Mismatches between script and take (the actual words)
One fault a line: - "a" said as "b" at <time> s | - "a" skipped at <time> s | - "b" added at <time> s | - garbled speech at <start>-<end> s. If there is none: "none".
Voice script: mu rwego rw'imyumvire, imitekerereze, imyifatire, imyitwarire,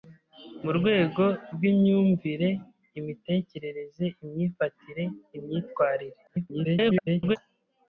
- garbled speech at 6.3-7.4 s